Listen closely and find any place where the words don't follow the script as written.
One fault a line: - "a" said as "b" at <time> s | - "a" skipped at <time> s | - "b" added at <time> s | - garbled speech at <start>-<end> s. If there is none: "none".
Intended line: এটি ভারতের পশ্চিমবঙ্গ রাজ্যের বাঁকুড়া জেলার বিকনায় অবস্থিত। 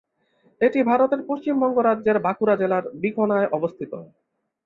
none